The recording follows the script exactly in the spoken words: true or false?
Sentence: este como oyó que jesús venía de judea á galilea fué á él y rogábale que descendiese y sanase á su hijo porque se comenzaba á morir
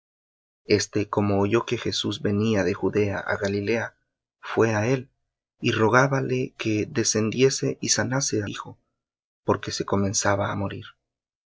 false